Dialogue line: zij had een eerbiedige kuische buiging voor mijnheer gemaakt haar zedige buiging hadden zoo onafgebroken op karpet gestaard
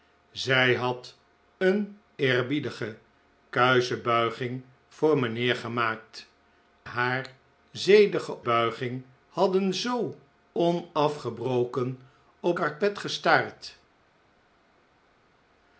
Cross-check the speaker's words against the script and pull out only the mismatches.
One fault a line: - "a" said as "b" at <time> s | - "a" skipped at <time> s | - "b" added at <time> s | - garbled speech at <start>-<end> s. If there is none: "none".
none